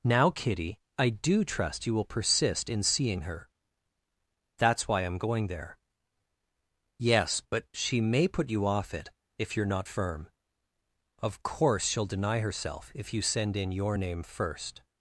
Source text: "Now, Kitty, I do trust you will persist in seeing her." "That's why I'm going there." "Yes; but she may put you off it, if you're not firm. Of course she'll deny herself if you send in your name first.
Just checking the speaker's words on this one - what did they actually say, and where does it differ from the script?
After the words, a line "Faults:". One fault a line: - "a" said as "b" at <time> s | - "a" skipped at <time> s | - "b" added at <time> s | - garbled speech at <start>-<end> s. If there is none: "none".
"Now, Kitty, I do trust you will persist in seeing her." "That's why I'm going there." "Yes; but she may put you off it, if you're not firm. Of course she'll deny herself if you send in your name first.
Faults:
none